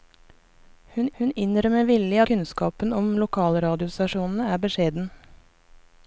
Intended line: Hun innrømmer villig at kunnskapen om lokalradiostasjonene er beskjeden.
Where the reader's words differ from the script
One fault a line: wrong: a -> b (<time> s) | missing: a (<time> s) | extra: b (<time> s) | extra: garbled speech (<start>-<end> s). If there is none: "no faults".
extra: hun (1.2 s)
missing: at (2.2 s)